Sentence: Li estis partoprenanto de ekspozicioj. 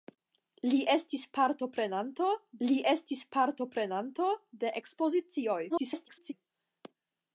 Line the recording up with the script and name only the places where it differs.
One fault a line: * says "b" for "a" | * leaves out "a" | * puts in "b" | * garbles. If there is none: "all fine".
* puts in "li estis partoprenanto"
* garbles